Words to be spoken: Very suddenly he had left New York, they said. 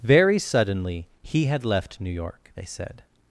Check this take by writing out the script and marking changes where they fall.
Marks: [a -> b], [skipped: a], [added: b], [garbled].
Very suddenly he had left New York, they said.